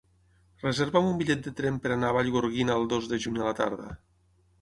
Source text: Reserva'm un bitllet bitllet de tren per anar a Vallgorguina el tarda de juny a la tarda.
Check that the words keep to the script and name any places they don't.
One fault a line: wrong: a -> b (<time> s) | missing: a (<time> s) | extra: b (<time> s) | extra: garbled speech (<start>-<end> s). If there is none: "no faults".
missing: bitllet (1.4 s)
wrong: tarda -> dos (3.0 s)